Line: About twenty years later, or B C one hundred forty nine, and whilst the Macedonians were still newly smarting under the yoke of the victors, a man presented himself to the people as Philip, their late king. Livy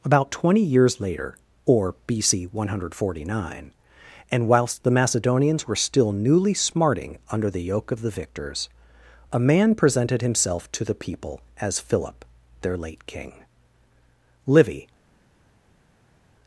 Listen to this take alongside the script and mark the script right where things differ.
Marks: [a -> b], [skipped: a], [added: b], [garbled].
About twenty years later, or B C one hundred forty nine, and whilst the Macedonians were still newly smarting under the yoke of the victors, a man presented himself to the people as Philip, their late king. Livy